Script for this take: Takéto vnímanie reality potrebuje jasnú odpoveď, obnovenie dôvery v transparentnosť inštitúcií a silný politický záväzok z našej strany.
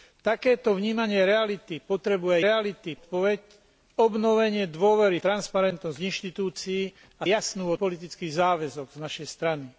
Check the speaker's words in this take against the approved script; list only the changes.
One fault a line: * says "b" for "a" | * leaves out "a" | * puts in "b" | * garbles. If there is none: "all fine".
* says "reality" for "jasnú"
* leaves out "v"
* says "jasnú" for "silný"